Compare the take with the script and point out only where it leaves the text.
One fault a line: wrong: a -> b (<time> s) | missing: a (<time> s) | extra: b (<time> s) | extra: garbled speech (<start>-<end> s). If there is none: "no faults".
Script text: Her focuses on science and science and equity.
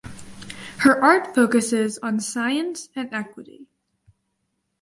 extra: art (1.0 s)
missing: science and (3.1 s)